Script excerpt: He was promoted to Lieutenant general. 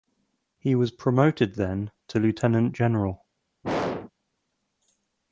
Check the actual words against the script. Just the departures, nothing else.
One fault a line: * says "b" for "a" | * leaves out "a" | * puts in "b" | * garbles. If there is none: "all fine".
* puts in "then"